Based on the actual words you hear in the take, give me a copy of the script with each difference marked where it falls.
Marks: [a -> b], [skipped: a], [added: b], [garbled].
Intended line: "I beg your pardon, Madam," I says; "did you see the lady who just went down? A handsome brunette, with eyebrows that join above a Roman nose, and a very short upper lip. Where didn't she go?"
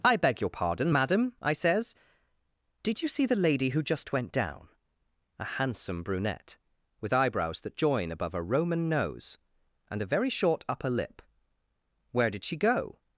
"I beg your pardon, Madam," I says; "did you see the lady who just went down? A handsome brunette, with eyebrows that join above a Roman nose, and a very short upper lip. Where [didn't -> did] she go?"